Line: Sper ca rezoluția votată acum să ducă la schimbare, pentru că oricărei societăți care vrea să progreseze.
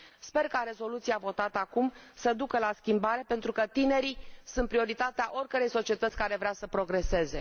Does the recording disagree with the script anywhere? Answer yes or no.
yes